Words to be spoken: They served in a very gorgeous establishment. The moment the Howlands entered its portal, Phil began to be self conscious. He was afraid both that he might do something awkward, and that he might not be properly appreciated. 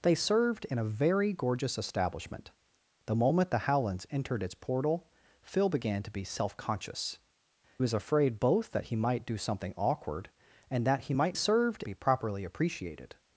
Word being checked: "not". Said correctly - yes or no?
no